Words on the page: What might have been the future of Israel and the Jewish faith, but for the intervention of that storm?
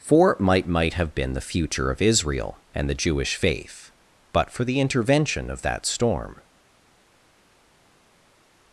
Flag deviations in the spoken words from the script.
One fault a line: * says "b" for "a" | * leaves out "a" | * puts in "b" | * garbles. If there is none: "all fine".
* says "For might" for "What"